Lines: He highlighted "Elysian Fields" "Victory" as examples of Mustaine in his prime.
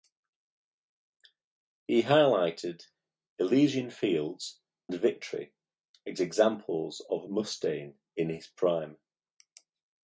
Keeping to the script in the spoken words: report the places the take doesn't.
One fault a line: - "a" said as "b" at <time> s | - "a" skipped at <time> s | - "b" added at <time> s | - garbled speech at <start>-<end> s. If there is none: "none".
none